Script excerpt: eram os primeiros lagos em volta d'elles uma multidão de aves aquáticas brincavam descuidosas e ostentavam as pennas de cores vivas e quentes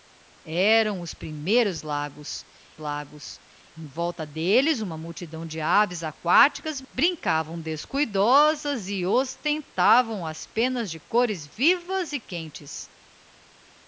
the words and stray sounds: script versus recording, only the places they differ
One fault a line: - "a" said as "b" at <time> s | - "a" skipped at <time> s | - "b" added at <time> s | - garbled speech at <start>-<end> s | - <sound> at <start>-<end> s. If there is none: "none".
- "lagos" added at 2.8 s